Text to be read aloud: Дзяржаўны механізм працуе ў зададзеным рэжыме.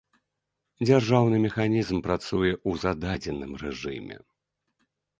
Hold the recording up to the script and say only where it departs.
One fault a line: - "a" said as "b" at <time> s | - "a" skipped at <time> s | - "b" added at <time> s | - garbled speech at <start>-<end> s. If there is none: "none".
none